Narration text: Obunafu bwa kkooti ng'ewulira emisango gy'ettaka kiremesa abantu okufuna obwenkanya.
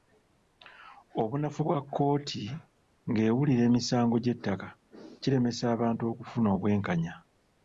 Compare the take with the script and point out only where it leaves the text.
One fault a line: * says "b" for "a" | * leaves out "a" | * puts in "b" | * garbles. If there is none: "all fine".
all fine